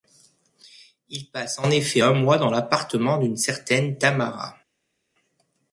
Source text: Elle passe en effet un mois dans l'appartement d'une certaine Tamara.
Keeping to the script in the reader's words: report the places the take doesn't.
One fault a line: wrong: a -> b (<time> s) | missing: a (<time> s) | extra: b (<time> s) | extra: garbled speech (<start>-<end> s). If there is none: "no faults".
wrong: Elle -> Il (1.1 s)